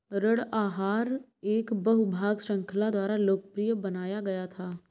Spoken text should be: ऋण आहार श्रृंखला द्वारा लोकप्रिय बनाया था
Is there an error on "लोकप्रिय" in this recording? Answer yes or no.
no